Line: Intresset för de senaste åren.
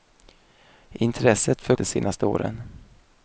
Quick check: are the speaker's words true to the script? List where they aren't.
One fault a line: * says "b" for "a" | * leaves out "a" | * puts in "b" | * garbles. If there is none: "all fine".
all fine